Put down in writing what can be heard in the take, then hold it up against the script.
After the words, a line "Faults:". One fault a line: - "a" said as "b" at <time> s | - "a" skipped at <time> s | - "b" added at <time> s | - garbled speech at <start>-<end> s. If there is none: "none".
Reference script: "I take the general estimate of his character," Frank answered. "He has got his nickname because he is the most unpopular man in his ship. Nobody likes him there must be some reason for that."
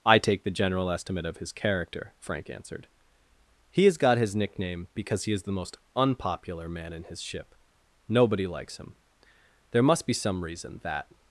"I take the general estimate of his character," Frank answered. "He has got his nickname because he is the most unpopular man in his ship. Nobody likes him there must be some reason that."
Faults:
- "for" skipped at 10.8 s